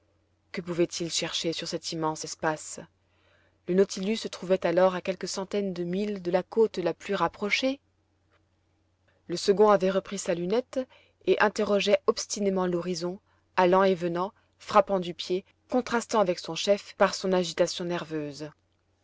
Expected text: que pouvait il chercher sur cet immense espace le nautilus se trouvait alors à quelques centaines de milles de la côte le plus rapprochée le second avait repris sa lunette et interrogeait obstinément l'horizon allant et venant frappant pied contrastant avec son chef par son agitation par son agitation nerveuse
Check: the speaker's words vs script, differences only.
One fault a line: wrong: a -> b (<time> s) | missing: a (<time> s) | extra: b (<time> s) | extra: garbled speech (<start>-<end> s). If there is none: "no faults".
wrong: le -> la (6.8 s)
extra: du (15.0 s)
missing: par son agitation (17.8 s)